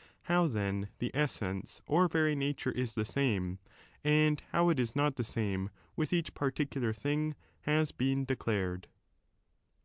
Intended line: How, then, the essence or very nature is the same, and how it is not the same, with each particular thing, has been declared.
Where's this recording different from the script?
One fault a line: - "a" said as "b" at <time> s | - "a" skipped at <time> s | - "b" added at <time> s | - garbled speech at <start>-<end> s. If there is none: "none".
none